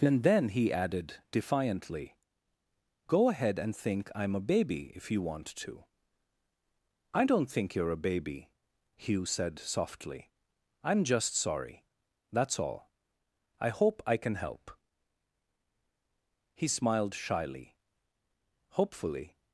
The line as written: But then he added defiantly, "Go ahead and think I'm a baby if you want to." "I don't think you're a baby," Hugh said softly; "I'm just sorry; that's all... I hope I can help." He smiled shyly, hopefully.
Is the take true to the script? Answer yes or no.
no